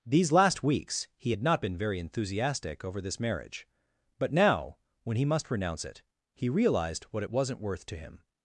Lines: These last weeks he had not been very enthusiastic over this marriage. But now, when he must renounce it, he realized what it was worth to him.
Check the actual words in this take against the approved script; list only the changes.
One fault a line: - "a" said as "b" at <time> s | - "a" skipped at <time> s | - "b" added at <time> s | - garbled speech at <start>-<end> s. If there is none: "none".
- "was" said as "wasn't" at 7.3 s